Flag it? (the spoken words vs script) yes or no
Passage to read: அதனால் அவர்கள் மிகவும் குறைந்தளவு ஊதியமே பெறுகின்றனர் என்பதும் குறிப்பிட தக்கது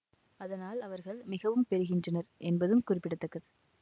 yes